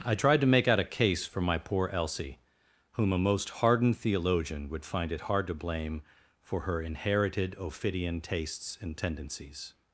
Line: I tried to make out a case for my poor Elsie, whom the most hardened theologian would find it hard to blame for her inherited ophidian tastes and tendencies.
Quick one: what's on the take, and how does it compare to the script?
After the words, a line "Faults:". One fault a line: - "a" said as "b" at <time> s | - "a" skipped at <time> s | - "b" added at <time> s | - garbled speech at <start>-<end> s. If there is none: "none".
I tried to make out a case for my poor Elsie, whom a most hardened theologian would find it hard to blame for her inherited ophidian tastes and tendencies.
Faults:
- "the" said as "a" at 3.1 s